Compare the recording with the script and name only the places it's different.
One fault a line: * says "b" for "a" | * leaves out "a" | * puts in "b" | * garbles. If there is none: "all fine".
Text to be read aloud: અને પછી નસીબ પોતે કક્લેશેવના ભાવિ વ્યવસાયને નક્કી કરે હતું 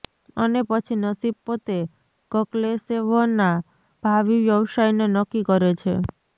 * says "છે" for "હતું"